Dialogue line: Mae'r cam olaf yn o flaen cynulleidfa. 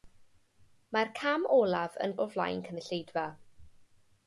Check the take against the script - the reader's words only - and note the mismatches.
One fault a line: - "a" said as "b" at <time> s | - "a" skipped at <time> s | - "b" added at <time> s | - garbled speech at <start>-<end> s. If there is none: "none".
none